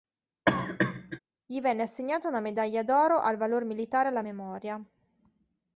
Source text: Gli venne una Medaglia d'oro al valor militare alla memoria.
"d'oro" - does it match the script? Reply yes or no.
yes